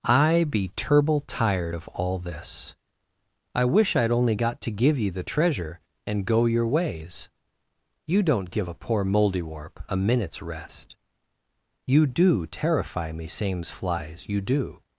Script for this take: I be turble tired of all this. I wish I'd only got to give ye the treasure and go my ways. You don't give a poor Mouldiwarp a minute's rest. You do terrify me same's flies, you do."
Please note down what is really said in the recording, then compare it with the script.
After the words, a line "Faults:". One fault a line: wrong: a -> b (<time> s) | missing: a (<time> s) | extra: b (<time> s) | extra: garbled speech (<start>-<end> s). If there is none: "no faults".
I be turble tired of all this. I wish I'd only got to give ye the treasure and go your ways. You don't give a poor Mouldiwarp a minute's rest. You do terrify me same's flies, you do."
Faults:
wrong: my -> your (6.5 s)